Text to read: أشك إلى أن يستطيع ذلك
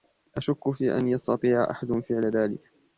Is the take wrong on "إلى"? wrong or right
wrong